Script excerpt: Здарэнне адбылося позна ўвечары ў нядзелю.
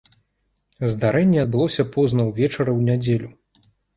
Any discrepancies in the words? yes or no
no